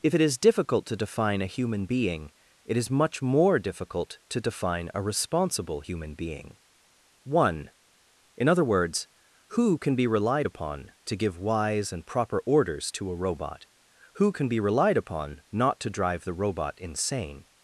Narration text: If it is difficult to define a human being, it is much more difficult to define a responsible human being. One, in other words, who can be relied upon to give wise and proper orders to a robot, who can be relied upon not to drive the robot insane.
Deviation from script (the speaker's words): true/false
false